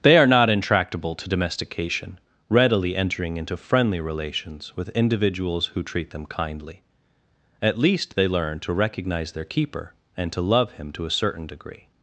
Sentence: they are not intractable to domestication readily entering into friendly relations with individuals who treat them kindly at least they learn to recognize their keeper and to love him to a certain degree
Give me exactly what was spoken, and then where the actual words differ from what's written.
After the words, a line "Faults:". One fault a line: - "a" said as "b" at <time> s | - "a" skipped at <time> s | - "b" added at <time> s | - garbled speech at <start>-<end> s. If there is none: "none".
they are not intractable to domestication readily entering into friendly relations with individuals who treat them kindly at least they learn to recognize their keeper and to love him to a certain degree
Faults:
none